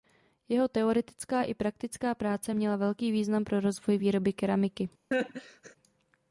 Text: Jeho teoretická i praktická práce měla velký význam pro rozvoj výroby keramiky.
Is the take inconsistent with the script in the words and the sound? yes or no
yes